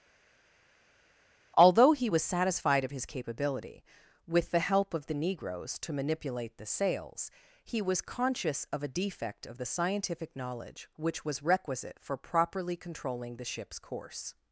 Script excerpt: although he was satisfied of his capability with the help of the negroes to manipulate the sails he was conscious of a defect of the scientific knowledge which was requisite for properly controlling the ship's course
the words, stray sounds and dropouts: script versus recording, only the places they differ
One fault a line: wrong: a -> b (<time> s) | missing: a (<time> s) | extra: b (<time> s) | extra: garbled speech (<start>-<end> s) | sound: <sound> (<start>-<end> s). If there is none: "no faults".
no faults